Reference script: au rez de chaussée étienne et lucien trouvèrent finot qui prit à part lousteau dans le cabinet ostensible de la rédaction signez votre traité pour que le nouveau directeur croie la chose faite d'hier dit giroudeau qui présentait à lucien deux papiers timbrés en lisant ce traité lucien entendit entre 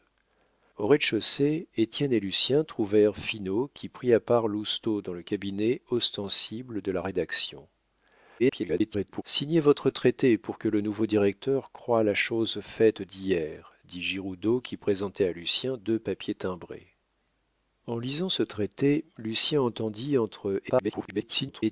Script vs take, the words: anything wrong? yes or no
yes